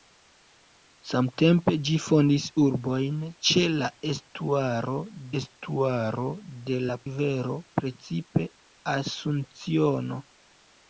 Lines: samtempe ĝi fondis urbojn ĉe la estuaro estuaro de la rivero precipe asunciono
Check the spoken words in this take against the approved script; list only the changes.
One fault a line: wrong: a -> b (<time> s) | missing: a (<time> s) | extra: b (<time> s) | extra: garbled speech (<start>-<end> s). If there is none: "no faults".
no faults